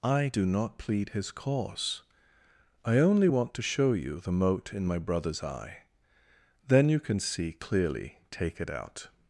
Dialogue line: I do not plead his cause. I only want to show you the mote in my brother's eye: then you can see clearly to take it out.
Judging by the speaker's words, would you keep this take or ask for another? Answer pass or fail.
fail